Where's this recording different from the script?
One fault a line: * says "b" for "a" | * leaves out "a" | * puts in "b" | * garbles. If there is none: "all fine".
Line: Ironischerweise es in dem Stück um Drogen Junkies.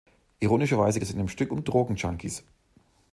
all fine